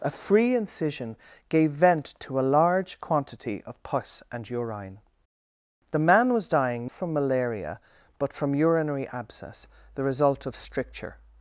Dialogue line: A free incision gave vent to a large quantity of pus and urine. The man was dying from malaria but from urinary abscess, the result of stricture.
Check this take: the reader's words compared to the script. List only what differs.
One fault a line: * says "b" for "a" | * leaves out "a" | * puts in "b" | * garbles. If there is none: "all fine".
all fine